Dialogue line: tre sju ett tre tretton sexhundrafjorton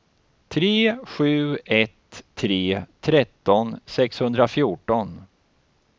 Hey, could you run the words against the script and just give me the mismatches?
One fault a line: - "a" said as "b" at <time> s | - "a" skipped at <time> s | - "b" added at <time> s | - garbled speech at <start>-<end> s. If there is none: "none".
none